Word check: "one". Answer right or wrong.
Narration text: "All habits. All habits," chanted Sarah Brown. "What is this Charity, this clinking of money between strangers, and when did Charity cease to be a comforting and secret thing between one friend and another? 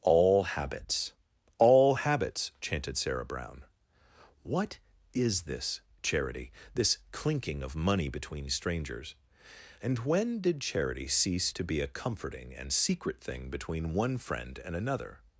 right